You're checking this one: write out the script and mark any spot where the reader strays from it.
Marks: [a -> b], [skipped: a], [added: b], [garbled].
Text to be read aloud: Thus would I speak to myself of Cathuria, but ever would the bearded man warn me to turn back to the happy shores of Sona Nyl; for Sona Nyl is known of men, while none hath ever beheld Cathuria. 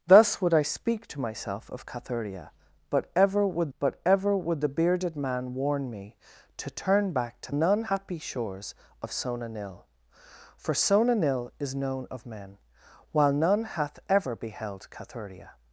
Thus would I speak to myself of Cathuria, but ever would [added: but ever would] the bearded man warn me to turn back to [the -> none] happy shores of Sona Nyl; for Sona Nyl is known of men, while none hath ever beheld Cathuria.